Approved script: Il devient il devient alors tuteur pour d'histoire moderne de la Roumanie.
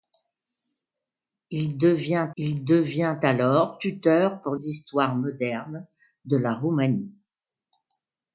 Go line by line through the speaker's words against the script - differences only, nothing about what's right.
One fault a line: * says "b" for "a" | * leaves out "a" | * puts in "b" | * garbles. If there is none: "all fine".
all fine